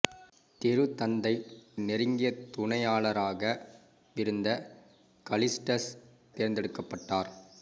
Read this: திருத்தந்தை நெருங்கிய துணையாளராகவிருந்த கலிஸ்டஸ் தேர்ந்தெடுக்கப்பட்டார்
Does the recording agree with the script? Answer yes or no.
yes